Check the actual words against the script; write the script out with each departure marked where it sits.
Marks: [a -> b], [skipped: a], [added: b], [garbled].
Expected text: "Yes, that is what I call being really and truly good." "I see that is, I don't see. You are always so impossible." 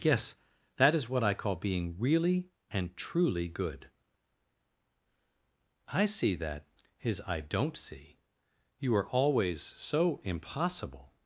"Yes, that is what I call being really and truly good." "I see that is, I don't see. You are always so impossible."